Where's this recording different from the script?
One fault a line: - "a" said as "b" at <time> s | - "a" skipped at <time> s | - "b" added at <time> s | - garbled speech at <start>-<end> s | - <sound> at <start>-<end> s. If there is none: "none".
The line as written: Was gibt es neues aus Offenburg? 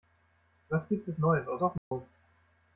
- dropout at 1.8-1.9 s